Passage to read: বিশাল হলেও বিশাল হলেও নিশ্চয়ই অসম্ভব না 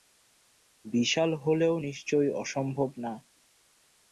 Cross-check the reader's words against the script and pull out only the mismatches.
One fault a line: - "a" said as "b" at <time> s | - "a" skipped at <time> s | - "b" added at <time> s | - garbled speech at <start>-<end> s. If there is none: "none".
- "বিশাল হলেও" skipped at 1.8 s